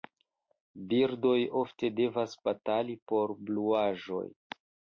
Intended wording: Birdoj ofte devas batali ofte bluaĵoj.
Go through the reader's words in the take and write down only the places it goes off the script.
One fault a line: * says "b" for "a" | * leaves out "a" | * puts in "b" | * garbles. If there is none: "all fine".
* says "por" for "ofte"